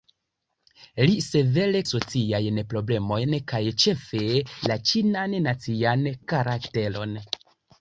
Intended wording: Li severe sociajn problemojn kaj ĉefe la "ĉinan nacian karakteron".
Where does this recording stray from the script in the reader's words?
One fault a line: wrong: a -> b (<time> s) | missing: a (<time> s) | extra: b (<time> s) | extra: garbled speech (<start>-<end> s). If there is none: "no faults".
no faults